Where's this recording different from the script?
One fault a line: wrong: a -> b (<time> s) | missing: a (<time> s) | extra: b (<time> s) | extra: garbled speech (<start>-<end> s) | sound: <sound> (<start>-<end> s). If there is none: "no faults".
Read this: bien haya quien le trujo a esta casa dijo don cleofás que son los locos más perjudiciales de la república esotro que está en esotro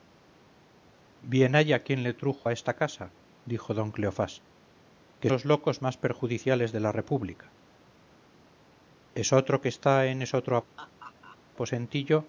missing: son (5.3 s)
sound: laugh (10.8-11.4 s)